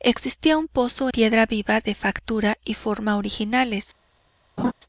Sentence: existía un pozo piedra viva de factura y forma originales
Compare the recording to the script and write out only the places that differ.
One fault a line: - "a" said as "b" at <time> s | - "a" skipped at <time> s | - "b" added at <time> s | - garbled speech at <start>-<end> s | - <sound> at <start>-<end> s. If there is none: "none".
- laugh at 4.6-4.7 s